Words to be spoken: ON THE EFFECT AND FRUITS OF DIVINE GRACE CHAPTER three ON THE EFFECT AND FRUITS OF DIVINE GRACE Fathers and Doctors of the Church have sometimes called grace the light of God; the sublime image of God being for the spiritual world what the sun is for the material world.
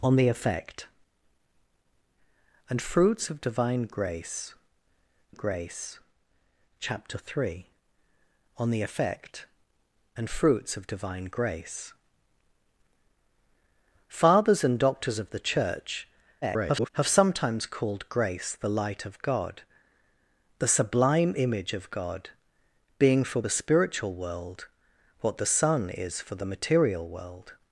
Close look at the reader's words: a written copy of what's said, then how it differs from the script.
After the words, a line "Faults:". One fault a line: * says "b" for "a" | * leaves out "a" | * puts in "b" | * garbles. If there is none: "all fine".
ON THE EFFECT AND FRUITS OF DIVINE GRACE GRACE CHAPTER three ON THE EFFECT AND FRUITS OF DIVINE GRACE Fathers and Doctors of the Church [garbled] have sometimes called grace the light of God; the sublime image of God being for the spiritual world what the sun is for the material world.
Faults:
* puts in "GRACE"
* garbles